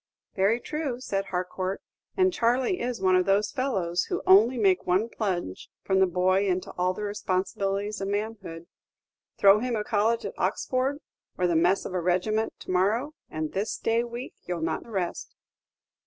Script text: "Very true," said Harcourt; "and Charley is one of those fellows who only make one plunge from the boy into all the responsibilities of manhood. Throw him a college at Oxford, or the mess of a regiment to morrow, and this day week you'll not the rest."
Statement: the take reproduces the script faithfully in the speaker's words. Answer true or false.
true